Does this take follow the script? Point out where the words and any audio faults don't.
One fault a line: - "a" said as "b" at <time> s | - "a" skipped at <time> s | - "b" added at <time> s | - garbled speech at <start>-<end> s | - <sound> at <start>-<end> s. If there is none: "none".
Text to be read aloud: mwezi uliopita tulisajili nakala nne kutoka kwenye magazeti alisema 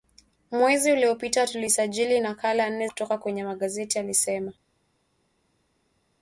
none